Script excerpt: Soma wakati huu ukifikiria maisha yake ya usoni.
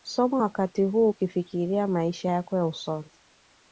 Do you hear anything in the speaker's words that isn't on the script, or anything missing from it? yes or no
yes